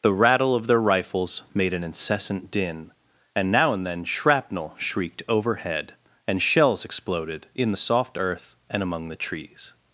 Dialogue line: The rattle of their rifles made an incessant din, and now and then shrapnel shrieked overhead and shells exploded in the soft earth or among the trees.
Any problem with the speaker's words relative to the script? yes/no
yes